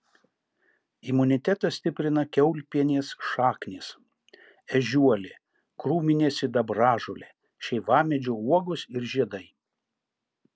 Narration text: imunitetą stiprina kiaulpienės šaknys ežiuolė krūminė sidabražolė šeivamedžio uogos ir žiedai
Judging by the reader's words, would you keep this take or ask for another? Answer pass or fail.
pass